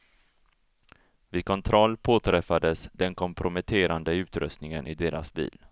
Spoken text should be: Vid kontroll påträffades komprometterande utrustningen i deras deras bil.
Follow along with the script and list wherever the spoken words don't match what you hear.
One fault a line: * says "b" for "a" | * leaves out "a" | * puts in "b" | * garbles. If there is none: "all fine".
* puts in "den"
* leaves out "deras"